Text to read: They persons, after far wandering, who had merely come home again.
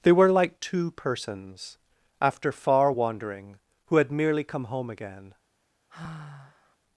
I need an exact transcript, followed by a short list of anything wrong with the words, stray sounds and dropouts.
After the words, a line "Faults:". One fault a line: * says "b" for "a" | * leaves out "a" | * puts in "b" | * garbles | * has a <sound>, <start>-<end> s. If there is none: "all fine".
They were like two persons, after far wandering, who had merely come home again.
Faults:
* puts in "were like two"
* has a sigh, 5.9-6.8 s